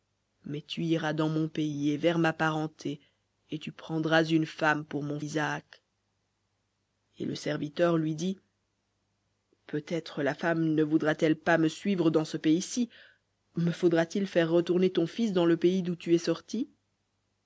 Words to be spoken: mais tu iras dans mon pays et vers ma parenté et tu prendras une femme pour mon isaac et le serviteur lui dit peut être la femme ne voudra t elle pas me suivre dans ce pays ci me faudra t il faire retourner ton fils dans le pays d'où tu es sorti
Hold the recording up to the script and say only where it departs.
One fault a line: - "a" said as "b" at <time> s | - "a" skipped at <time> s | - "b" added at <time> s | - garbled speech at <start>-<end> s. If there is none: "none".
none